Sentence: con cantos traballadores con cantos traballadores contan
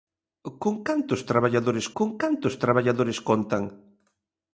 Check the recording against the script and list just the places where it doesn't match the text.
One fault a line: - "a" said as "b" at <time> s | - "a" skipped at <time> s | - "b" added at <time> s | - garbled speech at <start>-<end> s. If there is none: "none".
none